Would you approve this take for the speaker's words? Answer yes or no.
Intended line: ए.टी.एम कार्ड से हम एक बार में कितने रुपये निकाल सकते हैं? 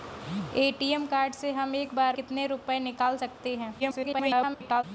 no